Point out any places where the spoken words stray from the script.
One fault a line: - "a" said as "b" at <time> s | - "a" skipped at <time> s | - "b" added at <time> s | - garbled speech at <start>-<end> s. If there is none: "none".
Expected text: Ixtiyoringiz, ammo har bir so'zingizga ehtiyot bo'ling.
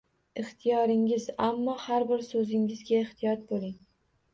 none